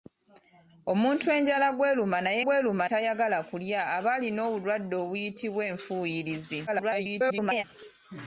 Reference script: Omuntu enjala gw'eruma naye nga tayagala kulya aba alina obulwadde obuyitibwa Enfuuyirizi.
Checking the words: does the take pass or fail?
fail